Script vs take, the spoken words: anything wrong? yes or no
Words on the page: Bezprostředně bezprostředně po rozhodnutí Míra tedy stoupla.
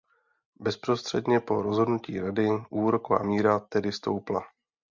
yes